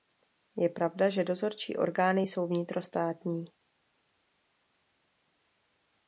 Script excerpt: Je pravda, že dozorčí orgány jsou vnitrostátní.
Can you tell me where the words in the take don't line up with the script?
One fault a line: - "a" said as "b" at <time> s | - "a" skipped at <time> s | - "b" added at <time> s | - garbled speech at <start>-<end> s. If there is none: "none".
none